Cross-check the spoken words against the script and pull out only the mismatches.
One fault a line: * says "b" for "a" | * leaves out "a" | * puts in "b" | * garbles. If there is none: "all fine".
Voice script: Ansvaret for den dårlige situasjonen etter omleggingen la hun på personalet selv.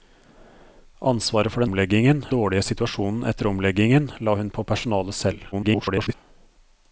* says "omleggingen" for "den"
* garbles